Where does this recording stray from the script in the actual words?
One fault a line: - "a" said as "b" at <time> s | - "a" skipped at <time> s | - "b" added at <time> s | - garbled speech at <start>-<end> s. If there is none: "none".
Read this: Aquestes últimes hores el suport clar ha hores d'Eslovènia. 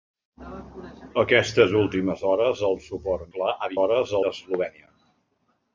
none